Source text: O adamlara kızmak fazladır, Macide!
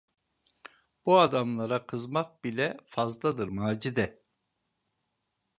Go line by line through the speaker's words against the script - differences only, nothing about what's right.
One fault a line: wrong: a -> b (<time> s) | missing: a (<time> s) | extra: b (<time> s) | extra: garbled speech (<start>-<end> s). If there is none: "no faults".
wrong: O -> Bu (1.1 s)
extra: bile (2.4 s)